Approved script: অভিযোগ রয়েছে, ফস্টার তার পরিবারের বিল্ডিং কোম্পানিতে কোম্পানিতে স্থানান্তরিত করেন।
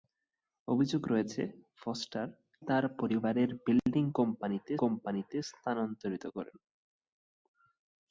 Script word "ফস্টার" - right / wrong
right